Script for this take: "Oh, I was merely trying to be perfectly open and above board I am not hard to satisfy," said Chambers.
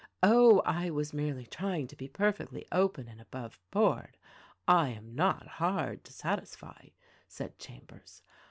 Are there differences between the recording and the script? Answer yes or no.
no